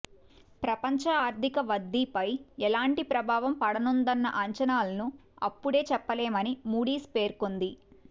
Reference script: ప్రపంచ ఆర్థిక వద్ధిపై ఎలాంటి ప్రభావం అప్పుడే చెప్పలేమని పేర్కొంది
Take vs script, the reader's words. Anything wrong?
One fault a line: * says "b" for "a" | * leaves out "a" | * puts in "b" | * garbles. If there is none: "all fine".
* puts in "పడనుందన్న అంచనాలను"
* puts in "మూడీస్"